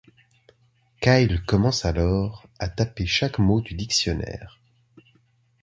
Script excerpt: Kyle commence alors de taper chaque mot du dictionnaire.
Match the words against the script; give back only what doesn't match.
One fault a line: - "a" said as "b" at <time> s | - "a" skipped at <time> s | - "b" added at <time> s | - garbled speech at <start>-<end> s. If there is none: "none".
- "de" said as "à" at 2.6 s